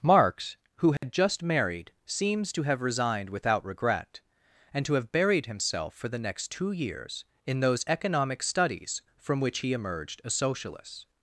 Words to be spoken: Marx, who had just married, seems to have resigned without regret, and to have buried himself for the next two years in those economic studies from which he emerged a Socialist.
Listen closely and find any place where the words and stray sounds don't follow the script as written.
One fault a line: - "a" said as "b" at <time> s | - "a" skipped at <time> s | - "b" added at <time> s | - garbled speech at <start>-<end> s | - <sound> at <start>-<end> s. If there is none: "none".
- dropout at 1.0-1.0 s